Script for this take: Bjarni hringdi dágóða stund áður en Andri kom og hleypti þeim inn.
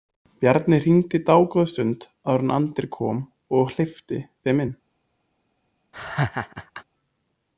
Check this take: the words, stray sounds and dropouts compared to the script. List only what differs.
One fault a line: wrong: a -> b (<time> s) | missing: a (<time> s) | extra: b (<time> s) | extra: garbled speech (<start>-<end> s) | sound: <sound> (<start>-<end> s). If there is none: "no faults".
sound: laugh (5.9-6.8 s)